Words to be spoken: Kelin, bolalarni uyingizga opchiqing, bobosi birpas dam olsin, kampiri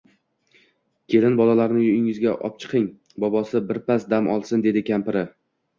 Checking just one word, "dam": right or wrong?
right